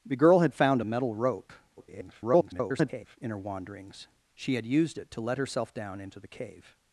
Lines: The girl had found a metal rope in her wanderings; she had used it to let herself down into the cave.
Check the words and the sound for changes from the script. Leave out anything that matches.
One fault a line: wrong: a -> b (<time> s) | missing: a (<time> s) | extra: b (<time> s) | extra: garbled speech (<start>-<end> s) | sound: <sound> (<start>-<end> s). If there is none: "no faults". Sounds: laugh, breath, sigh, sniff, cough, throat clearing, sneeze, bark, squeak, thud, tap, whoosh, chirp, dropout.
extra: garbled speech (1.8-3.2 s)